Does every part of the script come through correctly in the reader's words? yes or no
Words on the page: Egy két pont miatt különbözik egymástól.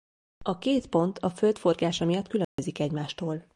no